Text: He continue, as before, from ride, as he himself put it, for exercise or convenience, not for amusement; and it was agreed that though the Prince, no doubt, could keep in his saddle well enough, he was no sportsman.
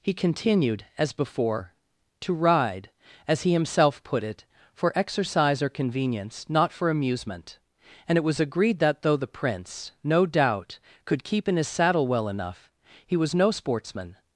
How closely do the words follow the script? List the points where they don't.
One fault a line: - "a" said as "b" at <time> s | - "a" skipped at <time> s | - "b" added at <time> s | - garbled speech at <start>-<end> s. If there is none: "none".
- "continue" said as "continued" at 0.1 s
- "from" said as "to" at 2.2 s